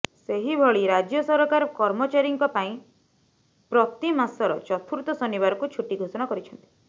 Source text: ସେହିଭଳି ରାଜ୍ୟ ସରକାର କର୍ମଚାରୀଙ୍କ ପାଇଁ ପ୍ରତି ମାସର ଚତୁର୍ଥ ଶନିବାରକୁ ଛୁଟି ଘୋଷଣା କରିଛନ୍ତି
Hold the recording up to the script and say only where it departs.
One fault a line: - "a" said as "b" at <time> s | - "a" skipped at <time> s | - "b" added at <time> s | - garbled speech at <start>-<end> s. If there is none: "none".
none